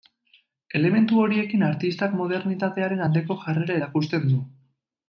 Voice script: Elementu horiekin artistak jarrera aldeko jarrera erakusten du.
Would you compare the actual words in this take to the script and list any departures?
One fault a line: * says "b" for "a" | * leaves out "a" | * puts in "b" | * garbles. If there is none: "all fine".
* says "modernitatearen" for "jarrera"